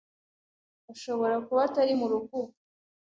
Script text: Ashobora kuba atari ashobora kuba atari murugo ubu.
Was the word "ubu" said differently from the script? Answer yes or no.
no